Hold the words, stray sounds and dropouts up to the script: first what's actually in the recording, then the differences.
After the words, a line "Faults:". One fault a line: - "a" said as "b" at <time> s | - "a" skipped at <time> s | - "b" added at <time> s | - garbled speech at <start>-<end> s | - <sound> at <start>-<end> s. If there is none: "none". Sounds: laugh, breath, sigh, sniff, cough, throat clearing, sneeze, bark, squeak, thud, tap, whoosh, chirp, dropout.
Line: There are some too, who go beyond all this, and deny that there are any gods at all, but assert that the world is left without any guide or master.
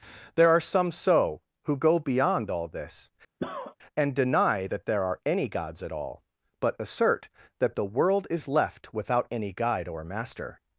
There are some so, who go beyond all this, and deny that there are any gods at all, but assert that the world is left without any guide or master.
Faults:
- "too" said as "so" at 0.9 s
- cough at 3.4-3.8 s